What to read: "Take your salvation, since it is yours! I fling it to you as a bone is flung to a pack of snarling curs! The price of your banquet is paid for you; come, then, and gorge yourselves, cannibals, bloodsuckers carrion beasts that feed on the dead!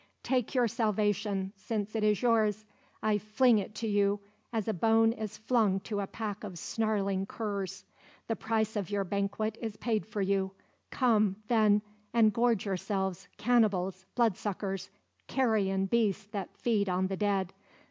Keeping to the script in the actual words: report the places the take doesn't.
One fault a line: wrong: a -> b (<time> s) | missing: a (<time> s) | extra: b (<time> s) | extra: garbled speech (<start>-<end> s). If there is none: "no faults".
no faults